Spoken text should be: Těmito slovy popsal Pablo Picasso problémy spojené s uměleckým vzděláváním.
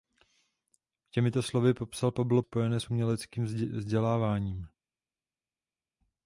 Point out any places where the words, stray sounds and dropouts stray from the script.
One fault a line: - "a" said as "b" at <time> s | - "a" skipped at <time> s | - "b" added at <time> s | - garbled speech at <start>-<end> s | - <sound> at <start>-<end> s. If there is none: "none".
- "Picasso problémy" skipped at 2.4 s